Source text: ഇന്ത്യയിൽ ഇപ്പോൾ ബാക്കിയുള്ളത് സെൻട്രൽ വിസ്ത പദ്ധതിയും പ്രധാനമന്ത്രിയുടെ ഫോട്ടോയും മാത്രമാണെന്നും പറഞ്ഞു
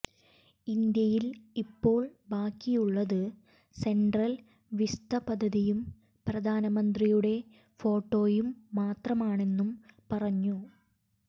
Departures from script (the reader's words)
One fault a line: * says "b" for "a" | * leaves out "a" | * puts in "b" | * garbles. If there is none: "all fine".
all fine